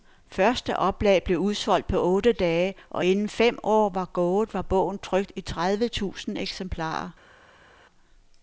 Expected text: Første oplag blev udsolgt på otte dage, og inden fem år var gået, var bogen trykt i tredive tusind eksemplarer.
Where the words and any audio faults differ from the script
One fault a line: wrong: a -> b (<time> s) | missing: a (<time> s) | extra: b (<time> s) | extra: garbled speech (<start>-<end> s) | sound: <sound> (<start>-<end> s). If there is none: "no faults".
no faults